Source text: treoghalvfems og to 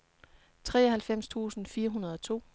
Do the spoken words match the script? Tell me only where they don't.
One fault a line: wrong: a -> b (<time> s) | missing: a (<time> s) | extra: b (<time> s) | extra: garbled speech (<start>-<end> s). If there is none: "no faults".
extra: tusind fire hundrede (1.3 s)